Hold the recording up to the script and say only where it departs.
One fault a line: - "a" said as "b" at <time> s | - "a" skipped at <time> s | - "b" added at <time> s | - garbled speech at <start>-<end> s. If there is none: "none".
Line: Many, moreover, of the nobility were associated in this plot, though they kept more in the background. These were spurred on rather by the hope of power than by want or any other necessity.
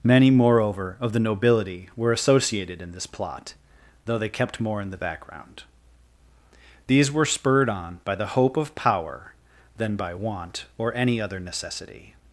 - "rather" skipped at 8.0 s